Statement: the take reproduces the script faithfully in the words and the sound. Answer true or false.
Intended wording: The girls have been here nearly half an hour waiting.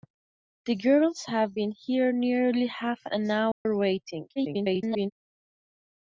false